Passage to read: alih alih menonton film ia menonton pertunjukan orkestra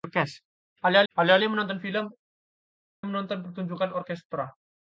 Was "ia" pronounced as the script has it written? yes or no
no